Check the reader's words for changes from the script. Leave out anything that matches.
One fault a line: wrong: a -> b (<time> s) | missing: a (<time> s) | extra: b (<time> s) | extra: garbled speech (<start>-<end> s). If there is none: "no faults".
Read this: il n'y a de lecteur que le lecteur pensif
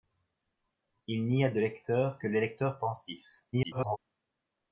extra: garbled speech (3.5-4.0 s)